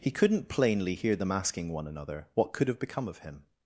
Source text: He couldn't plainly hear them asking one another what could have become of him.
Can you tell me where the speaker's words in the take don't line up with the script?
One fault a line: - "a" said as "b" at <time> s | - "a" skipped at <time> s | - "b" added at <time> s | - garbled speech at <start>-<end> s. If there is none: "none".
none